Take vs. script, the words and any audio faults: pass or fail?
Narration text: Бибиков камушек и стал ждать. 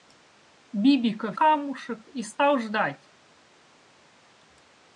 pass